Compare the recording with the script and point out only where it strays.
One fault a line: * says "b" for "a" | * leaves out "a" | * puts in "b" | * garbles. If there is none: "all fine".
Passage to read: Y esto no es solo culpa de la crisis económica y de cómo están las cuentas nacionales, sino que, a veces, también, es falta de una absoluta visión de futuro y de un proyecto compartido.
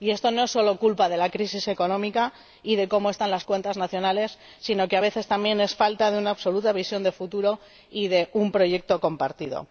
all fine